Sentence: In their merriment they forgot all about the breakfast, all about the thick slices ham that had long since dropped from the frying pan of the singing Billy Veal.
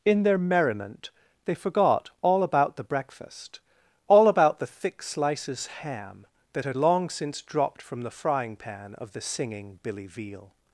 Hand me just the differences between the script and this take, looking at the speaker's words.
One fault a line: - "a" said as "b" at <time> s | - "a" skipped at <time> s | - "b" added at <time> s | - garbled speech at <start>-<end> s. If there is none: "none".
none